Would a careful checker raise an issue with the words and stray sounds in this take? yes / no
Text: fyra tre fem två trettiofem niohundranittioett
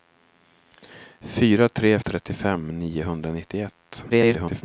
yes